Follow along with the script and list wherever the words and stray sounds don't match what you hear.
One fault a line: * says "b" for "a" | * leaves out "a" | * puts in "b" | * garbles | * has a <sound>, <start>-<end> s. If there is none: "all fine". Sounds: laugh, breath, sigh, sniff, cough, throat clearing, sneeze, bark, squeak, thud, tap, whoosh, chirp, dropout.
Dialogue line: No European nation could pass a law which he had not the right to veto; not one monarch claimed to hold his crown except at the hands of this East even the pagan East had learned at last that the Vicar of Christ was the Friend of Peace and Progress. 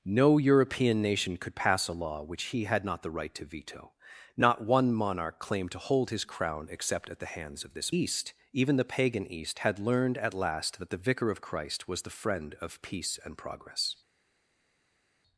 all fine